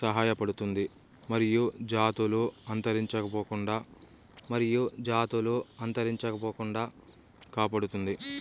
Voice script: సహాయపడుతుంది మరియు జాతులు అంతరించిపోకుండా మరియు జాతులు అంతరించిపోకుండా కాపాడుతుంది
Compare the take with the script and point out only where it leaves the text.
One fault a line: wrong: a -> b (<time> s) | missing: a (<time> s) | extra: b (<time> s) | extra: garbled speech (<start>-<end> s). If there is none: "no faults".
no faults